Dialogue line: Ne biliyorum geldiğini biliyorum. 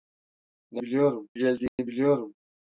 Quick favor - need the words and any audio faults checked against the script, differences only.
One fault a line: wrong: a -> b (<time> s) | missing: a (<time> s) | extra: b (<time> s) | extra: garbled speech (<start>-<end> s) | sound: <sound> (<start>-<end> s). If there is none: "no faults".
sound: dropout (1.7-1.8 s)